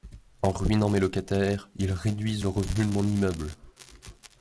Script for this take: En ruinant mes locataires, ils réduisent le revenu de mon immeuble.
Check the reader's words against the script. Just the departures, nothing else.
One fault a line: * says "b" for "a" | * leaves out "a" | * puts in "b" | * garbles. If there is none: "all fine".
all fine